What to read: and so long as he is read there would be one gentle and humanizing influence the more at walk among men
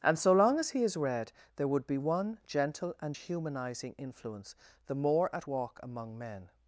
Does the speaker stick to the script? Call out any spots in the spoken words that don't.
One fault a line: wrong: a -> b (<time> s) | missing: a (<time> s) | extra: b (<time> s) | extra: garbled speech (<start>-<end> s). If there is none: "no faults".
no faults